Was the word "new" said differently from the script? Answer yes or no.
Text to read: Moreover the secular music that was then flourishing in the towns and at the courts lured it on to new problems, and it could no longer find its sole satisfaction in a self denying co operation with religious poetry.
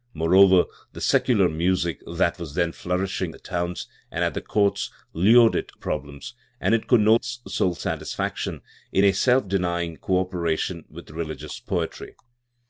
yes